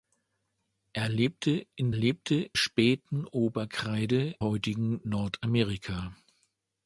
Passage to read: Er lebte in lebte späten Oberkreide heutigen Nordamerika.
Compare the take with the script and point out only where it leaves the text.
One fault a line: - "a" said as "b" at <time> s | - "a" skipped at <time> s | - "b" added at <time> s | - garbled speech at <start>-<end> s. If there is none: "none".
none